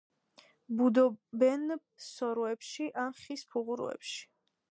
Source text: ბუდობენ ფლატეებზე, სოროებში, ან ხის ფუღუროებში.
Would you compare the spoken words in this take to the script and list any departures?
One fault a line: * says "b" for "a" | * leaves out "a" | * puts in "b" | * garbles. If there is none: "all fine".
* leaves out "ფლატეებზე"